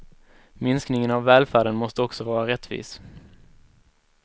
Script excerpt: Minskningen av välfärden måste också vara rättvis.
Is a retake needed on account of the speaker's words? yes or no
no